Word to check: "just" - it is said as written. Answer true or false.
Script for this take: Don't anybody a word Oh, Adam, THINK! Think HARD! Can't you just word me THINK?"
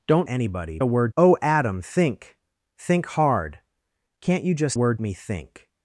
true